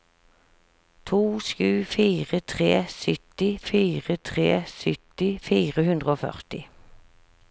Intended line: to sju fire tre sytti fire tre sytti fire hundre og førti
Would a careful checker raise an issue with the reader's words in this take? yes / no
no